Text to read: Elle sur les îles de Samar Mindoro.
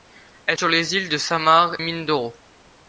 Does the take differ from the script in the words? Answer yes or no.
no